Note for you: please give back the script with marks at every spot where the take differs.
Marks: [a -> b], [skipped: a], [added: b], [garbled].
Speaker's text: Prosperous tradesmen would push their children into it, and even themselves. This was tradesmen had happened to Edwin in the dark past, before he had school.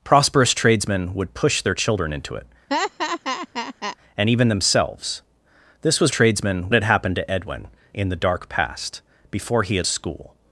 Prosperous tradesmen would push their children into it, and even themselves. This was tradesmen had happened to Edwin in the dark past, before he had school.